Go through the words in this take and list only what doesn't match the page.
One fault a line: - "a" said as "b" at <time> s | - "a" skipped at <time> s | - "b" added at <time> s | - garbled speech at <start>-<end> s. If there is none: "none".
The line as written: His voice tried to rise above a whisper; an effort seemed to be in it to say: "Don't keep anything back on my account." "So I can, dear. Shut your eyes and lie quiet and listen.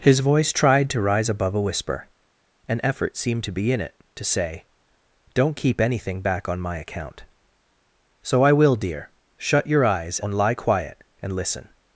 - "can" said as "will" at 8.5 s